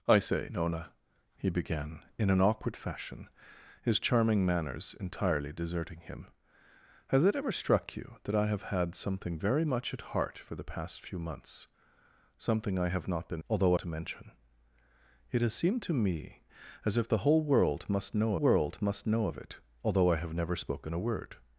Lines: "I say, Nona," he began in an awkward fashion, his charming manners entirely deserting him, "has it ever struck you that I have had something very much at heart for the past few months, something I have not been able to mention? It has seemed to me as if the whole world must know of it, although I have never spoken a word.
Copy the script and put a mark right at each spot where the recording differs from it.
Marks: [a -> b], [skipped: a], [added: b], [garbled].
"I say, Nona," he began in an awkward fashion, his charming manners entirely deserting him, "has it ever struck you that I have had something very much at heart for the past few months, something I have not been [able -> although] to mention? It has seemed to me as if the whole world must know [added: world must know] of it, although I have never spoken a word.